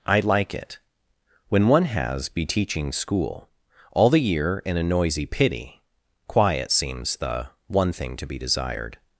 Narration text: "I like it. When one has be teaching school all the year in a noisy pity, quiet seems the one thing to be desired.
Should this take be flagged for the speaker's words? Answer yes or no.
no